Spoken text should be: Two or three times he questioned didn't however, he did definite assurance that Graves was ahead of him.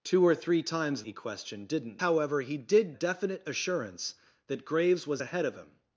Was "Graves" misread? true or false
false